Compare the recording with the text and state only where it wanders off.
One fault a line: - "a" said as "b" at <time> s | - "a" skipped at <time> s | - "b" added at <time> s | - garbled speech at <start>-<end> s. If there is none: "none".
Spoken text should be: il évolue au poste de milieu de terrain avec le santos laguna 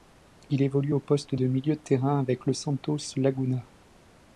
none